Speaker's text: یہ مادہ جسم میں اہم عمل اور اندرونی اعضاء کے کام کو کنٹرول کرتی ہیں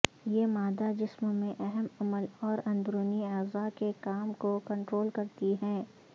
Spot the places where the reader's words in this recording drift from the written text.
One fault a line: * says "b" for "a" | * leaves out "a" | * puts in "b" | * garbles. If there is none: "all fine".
all fine